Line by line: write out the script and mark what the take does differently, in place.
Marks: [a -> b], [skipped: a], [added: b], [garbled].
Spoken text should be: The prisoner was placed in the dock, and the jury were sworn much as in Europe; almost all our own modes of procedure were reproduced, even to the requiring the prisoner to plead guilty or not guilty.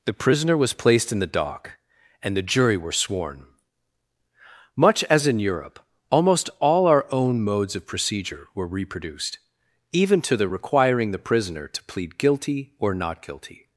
The prisoner was placed in the dock, and the jury were sworn much as in Europe; almost all our own modes of procedure were reproduced, even to the requiring the prisoner to plead guilty or not guilty.